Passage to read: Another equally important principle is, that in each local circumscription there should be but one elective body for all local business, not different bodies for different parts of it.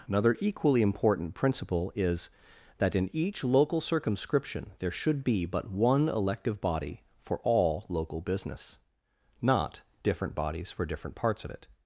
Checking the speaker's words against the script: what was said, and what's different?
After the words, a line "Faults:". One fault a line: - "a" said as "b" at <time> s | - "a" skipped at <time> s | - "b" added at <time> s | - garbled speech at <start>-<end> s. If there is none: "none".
Another equally important principle is, that in each local circumscription there should be but one elective body for all local business, not different bodies for different parts of it.
Faults:
none